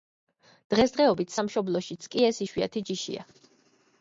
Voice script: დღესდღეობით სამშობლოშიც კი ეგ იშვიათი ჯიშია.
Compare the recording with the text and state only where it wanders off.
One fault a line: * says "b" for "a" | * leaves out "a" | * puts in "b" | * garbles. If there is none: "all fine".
* says "ეს" for "ეგ"